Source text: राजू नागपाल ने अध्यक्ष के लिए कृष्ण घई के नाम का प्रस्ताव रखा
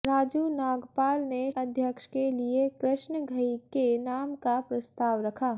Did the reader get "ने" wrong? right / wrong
right